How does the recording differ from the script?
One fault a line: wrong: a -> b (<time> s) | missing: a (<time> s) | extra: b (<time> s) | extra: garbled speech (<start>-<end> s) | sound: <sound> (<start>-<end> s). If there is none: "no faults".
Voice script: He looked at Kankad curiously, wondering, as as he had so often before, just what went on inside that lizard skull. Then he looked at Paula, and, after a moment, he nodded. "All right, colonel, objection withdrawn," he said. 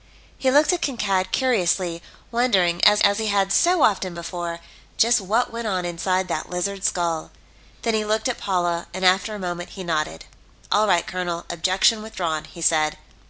no faults